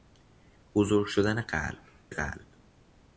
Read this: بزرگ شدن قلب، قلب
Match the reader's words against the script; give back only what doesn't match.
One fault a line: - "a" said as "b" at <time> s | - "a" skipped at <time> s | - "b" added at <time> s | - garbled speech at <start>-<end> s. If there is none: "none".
none